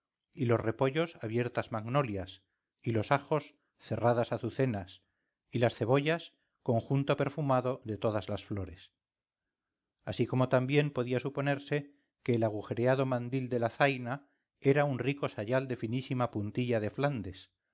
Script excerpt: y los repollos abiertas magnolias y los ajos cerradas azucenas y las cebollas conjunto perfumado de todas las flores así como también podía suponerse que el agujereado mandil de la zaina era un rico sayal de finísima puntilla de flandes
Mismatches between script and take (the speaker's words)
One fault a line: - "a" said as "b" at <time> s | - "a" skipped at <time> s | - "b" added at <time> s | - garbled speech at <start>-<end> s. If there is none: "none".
none